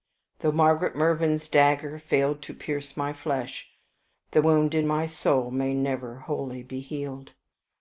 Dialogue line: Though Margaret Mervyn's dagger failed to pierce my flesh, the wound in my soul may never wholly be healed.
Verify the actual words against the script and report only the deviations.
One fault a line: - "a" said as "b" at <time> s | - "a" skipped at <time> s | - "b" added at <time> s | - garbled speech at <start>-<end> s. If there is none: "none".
none